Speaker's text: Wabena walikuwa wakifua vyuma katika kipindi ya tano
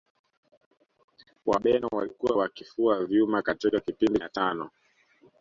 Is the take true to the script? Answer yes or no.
yes